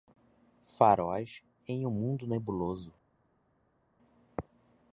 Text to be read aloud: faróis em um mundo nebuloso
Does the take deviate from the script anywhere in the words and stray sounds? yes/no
no